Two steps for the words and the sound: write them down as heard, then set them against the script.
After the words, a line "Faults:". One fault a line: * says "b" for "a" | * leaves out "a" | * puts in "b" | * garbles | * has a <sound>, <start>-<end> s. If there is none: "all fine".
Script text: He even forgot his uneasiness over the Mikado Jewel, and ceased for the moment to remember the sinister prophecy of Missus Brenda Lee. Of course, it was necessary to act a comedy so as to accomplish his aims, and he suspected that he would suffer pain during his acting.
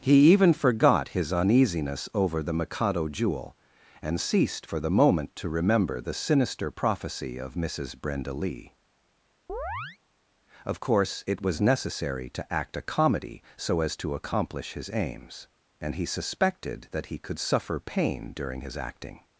He even forgot his uneasiness over the Mikado Jewel, and ceased for the moment to remember the sinister prophecy of Missus Brenda Lee. Of course, it was necessary to act a comedy so as to accomplish his aims, and he suspected that he could suffer pain during his acting.
Faults:
* has a chirp, 9.5-10.0 s
* says "could" for "would"